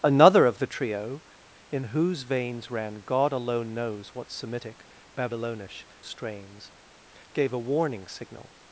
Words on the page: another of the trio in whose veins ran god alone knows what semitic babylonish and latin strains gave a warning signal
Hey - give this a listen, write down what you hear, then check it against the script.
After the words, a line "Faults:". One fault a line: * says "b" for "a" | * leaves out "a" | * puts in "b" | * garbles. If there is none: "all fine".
another of the trio in whose veins ran god alone knows what semitic babylonish strains gave a warning signal
Faults:
* leaves out "and latin"